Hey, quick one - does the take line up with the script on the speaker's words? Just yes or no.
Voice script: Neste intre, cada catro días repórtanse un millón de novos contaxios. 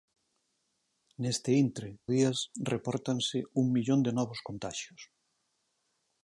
no